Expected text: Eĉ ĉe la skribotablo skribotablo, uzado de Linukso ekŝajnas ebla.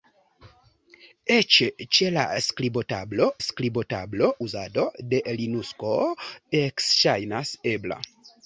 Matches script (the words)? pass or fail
pass